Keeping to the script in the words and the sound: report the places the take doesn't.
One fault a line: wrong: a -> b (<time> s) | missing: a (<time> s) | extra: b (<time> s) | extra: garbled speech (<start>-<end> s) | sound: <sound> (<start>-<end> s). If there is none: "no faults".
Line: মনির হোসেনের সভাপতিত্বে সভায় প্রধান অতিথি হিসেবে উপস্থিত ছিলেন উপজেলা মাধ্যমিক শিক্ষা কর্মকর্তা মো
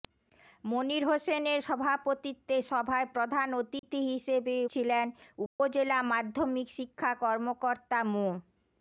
sound: dropout (3.8-3.8 s)
missing: উপস্থিত (4.5 s)
sound: dropout (5.5-5.6 s)